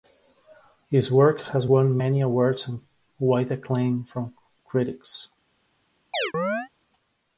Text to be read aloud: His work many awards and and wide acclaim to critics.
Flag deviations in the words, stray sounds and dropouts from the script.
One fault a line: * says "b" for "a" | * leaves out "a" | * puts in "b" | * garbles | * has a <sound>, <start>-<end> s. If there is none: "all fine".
* puts in "has won"
* leaves out "and"
* says "from" for "to"
* has a chirp, 6.1-6.7 s